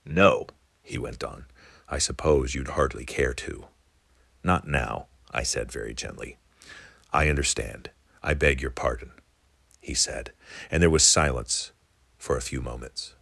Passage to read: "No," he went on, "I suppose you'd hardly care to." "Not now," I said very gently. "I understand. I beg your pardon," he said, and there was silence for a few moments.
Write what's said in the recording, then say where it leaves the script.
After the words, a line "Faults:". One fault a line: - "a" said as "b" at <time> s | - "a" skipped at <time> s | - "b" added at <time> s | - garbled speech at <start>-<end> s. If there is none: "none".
"No," he went on, "I suppose you'd hardly care to." "Not now," I said very gently. "I understand. I beg your pardon," he said, and there was silence for a few moments.
Faults:
none